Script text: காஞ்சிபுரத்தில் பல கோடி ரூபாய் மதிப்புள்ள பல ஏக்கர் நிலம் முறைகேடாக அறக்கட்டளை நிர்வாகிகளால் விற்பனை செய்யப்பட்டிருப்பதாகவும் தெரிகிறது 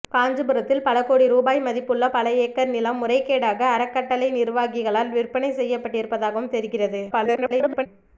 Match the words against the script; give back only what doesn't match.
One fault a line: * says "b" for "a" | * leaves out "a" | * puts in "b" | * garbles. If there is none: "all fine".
* garbles